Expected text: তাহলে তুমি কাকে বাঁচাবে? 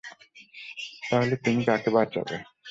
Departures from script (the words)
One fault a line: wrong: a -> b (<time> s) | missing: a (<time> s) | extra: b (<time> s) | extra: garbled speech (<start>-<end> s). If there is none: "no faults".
no faults